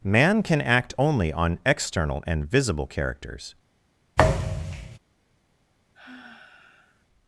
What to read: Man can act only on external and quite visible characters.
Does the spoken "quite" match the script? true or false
false